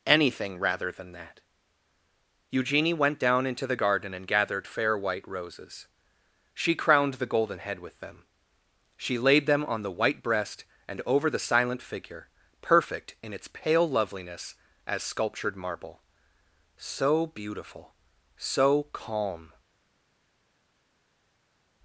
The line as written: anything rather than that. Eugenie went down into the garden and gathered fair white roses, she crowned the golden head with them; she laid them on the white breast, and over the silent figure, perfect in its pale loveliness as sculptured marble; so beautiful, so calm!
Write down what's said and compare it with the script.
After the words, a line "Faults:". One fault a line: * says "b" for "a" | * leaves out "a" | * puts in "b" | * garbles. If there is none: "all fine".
anything rather than that. Eugenie went down into the garden and gathered fair white roses, she crowned the golden head with them; she laid them on the white breast, and over the silent figure, perfect in its pale loveliness as sculptured marble; so beautiful, so calm!
Faults:
all fine